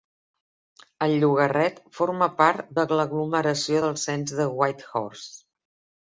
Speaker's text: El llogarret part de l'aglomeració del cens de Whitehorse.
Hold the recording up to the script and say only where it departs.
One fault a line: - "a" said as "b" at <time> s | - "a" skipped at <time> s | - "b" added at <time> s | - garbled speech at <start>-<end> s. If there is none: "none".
- "forma" added at 2.0 s